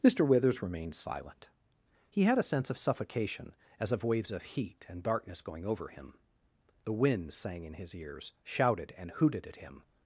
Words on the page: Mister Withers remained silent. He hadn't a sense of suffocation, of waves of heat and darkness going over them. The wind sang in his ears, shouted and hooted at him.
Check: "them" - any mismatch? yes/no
yes